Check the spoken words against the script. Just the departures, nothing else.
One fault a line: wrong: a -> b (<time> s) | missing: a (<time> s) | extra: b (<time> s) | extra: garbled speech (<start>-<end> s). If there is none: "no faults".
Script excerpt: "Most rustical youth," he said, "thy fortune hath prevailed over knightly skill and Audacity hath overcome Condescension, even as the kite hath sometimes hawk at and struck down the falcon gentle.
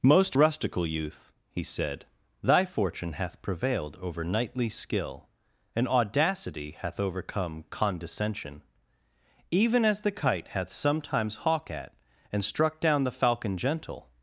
no faults